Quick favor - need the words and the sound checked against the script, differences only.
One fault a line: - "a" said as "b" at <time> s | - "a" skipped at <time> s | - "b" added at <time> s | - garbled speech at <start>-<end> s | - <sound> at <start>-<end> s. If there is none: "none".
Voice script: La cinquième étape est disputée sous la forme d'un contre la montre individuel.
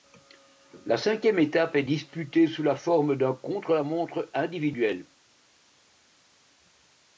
none